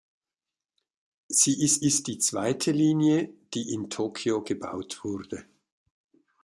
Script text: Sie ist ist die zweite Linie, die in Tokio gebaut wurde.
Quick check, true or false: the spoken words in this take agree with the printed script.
true